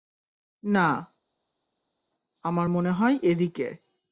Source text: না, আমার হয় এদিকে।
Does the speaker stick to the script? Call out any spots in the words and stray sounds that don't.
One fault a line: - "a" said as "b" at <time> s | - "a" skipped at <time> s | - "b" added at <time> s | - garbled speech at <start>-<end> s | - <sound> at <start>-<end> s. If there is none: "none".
- "মনে" added at 2.7 s